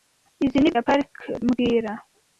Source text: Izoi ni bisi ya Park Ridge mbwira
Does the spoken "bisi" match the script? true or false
false